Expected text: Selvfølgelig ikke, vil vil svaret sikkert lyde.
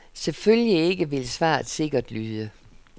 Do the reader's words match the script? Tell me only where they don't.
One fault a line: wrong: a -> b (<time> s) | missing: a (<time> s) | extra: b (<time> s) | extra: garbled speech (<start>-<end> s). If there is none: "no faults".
missing: vil (1.3 s)